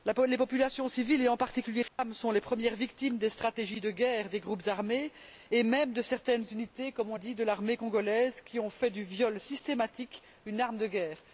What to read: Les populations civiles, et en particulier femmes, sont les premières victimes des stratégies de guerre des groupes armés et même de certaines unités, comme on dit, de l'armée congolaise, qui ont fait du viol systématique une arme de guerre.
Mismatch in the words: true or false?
false